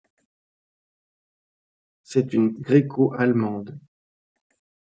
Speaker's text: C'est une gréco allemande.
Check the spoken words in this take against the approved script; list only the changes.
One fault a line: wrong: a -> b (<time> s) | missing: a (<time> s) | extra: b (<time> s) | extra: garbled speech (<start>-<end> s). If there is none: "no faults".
no faults